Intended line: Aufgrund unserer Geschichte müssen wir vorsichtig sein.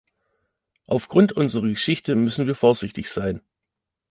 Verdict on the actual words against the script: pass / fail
pass